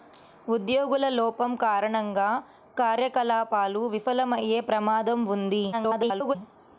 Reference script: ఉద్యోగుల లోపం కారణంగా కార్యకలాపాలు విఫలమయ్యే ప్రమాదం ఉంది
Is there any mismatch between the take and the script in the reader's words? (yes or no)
yes